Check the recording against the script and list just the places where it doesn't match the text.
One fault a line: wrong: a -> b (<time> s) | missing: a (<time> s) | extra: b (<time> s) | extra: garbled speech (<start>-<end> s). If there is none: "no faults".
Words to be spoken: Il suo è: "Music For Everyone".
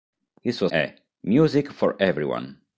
no faults